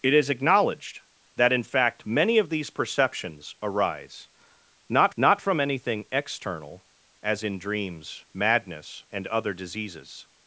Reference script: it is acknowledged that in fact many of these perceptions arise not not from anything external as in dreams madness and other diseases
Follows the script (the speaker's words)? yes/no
yes